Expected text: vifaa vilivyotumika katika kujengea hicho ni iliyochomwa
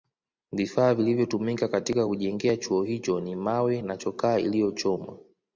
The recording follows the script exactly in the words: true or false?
false